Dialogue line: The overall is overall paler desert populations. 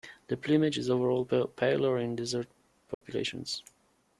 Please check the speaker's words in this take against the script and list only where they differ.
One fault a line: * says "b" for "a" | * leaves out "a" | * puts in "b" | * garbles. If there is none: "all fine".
* says "plumage" for "overall"
* puts in "in"